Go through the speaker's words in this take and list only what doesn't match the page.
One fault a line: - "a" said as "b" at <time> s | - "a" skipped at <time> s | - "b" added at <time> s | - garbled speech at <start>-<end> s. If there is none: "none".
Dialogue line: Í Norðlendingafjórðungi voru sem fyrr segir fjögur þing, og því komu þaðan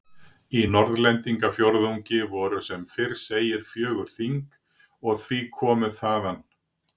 none